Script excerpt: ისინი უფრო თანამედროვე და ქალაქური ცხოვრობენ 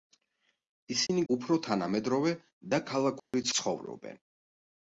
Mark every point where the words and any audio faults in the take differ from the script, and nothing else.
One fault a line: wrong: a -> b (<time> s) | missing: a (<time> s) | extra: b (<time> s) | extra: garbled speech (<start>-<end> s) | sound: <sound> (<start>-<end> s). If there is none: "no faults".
sound: dropout (1.1-1.1 s)
sound: dropout (3.2-3.3 s)